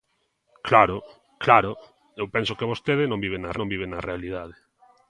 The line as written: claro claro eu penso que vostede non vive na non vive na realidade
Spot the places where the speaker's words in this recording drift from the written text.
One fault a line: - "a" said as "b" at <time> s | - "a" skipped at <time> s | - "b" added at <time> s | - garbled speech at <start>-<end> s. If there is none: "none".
none